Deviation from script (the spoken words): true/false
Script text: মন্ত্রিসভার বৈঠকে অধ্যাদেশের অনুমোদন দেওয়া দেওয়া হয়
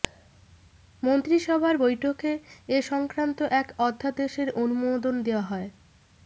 true